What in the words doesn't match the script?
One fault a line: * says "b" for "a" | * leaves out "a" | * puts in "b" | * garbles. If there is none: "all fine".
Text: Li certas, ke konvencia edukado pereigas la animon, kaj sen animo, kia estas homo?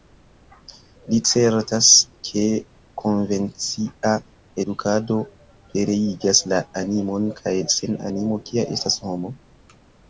all fine